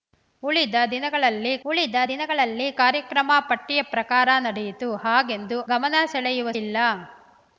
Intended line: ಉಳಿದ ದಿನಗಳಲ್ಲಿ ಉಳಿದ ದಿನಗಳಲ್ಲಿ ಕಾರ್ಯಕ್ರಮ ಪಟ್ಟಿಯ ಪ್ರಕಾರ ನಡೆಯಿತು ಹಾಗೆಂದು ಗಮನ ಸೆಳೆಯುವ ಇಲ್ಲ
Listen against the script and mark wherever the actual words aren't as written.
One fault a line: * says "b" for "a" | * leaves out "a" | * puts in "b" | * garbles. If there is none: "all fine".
all fine